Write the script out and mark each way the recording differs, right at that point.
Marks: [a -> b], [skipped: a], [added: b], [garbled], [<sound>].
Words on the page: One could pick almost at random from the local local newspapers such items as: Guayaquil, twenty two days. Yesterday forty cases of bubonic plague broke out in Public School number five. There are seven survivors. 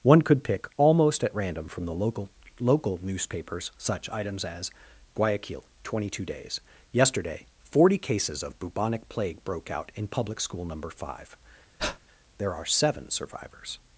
One could pick almost at random from the local local newspapers such items as: Guayaquil, twenty two days. Yesterday forty cases of bubonic plague broke out in Public School number five. [breath] There are seven survivors.